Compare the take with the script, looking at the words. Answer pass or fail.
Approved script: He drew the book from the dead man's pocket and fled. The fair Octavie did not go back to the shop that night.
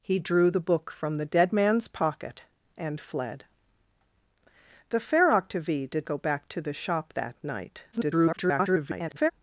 fail